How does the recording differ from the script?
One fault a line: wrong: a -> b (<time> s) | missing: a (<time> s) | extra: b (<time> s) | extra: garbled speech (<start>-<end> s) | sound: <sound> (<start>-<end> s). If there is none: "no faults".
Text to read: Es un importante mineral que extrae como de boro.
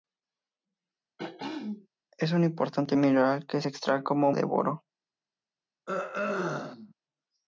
sound: throat clearing (1.2-1.9 s)
sound: throat clearing (5.9-6.9 s)